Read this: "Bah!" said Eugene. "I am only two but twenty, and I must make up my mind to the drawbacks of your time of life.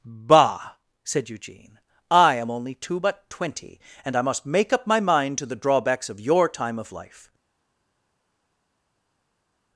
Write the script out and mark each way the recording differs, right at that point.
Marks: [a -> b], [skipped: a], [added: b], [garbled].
"Bah!" said Eugene. "I am only two but twenty, and I must make up my mind to the drawbacks of your time of life.